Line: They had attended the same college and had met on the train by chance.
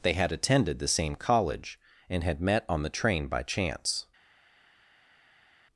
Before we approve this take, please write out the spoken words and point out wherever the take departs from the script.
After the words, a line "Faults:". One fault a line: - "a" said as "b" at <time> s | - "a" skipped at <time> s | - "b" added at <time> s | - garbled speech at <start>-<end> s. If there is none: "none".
They had attended the same college and had met on the train by chance.
Faults:
none